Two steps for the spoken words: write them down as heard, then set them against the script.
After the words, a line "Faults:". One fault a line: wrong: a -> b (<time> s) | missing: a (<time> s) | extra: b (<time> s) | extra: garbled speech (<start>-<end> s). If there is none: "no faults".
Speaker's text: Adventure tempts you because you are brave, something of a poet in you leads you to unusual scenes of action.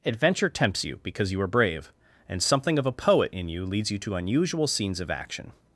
Adventure tempts you because you are brave, and something of a poet in you leads you to unusual scenes of action.
Faults:
extra: and (2.3 s)